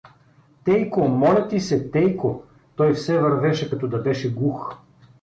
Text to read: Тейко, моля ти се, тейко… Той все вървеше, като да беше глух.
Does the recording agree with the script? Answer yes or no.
yes